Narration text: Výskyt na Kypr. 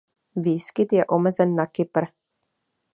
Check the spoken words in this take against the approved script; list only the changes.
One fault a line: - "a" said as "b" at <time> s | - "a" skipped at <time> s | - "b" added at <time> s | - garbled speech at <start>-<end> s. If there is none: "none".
- "je omezen" added at 0.9 s